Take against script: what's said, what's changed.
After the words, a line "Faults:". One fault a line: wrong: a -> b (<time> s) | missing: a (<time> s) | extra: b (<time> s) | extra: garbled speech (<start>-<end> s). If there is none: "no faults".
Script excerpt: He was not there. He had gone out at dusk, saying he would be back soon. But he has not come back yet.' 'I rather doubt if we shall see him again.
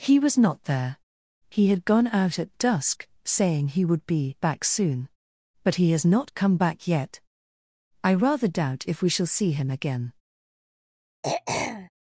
He was not there. He had gone out at dusk, saying he would be back soon. But he has not come back yet.' 'I rather doubt if we shall see him again.
Faults:
no faults